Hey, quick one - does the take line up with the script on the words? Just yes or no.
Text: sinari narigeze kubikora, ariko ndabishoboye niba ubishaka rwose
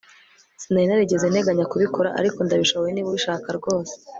no